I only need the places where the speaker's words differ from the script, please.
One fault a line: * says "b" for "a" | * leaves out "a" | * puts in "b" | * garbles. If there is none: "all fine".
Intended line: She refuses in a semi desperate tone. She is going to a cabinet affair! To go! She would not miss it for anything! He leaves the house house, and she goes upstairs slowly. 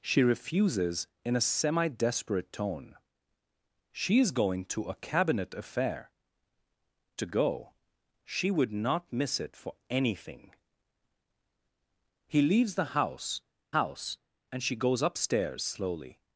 all fine